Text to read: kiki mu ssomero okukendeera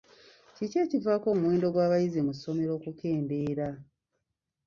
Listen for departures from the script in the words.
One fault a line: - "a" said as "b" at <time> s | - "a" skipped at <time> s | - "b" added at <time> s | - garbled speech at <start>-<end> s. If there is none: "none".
- "ekivaako omuwendo gw'abayizi" added at 0.8 s